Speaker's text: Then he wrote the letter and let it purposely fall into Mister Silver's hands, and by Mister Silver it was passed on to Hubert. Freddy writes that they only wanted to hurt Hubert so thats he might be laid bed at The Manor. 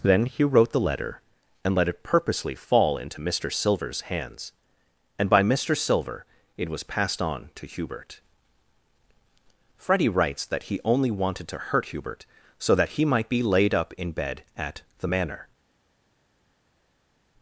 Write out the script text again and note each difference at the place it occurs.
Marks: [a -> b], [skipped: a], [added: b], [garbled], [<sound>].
Then he wrote the letter and let it purposely fall into Mister Silver's hands, and by Mister Silver it was passed on to Hubert. Freddy writes that [they -> he] only wanted to hurt Hubert so [thats -> that] he might be laid [added: up in] bed at The Manor.